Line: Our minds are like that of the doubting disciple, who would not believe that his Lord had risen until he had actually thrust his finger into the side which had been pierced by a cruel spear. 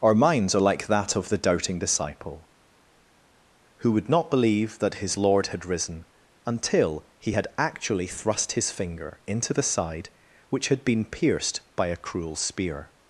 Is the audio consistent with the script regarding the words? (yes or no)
yes